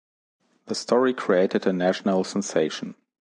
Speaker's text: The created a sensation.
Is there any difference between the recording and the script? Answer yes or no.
yes